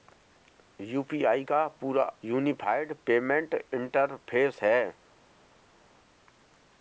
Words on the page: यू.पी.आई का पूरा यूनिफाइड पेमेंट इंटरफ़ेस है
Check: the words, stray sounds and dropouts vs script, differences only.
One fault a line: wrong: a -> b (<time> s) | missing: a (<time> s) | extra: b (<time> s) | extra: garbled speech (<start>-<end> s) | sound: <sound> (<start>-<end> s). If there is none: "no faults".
no faults